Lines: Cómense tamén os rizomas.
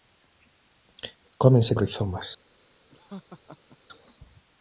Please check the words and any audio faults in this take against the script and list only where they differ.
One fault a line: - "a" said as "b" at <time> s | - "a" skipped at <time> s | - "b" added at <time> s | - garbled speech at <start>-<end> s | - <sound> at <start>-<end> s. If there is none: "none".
- "tamén" skipped at 1.7 s
- laugh at 2.9-3.8 s